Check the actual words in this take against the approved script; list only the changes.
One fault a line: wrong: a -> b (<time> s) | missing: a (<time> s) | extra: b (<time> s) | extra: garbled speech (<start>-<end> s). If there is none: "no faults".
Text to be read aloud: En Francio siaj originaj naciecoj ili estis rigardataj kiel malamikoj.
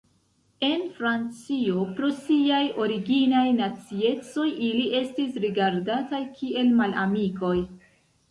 extra: pro (2.0 s)